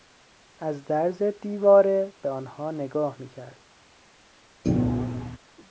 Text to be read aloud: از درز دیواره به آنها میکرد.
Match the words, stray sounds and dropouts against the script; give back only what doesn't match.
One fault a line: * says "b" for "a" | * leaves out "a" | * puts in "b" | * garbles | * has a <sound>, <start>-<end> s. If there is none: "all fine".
* puts in "نگاه"
* has a thud, 4.6-5.4 s